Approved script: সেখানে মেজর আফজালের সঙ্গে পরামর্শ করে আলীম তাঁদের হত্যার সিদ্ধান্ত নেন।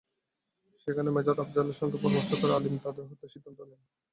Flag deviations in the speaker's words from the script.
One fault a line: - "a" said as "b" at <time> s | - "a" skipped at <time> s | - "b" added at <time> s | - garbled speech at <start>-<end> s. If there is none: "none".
none